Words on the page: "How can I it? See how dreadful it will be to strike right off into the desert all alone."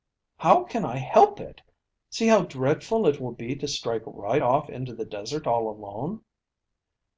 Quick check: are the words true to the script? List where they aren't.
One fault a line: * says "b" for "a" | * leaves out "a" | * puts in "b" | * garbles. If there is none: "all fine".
* puts in "help"